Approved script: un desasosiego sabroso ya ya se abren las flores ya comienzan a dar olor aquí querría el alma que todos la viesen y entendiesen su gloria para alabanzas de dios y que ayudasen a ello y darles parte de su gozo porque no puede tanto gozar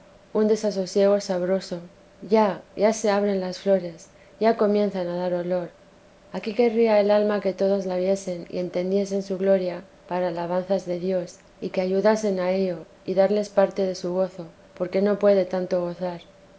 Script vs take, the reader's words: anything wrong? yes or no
no